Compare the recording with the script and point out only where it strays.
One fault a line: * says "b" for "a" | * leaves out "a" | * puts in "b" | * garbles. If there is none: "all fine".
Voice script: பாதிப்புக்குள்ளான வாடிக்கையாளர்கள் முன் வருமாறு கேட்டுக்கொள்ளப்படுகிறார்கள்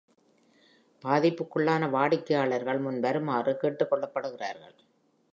all fine